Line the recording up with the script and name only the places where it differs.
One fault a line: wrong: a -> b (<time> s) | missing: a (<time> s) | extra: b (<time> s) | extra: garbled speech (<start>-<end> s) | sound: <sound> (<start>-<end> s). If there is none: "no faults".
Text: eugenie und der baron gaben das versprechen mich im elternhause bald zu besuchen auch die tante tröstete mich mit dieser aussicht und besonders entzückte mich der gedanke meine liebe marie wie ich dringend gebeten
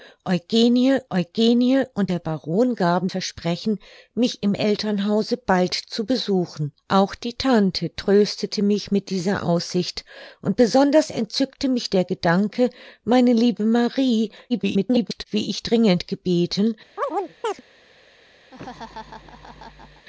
extra: eugenie (1.1 s)
missing: das (3.1 s)
extra: garbled speech (14.5-15.2 s)
sound: chirp (17.0-17.6 s)
sound: laugh (18.5-20.1 s)